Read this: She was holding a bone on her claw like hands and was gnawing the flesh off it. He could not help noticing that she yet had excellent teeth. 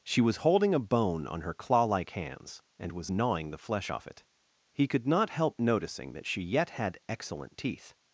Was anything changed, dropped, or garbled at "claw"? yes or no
no